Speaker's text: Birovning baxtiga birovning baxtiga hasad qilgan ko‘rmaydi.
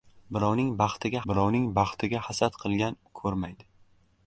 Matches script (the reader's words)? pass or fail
pass